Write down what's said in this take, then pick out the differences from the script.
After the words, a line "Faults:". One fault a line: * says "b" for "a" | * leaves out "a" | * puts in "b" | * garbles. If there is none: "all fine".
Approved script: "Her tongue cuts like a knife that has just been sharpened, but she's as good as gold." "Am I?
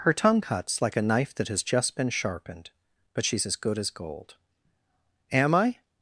"Her tongue cuts like a knife that has just been sharpened, but she's as good as gold." "Am I?
Faults:
all fine